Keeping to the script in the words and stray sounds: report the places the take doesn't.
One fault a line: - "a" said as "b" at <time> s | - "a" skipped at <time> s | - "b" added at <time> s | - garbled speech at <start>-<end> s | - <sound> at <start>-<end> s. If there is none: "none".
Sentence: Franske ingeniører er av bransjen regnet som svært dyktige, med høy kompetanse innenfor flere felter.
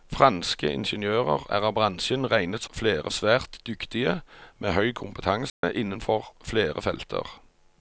- "som" said as "flere" at 2.7 s
- dropout at 5.5-5.6 s